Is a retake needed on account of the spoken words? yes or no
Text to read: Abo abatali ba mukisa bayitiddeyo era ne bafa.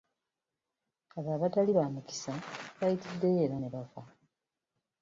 no